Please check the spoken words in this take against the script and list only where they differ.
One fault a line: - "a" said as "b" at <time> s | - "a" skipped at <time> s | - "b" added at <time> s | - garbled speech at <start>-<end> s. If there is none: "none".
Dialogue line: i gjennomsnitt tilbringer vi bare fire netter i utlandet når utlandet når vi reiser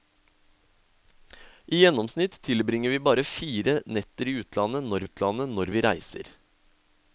none